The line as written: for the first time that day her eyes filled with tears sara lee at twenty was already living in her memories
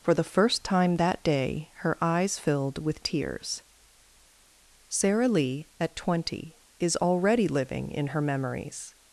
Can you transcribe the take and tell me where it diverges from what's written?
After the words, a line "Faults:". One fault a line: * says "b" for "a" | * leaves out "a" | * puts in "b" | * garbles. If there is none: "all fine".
for the first time that day her eyes filled with tears sara lee at twenty is already living in her memories
Faults:
* says "is" for "was"